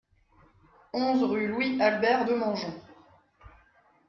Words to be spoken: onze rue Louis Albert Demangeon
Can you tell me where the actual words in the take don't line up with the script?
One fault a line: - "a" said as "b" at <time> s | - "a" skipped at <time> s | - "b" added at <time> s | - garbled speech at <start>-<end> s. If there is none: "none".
none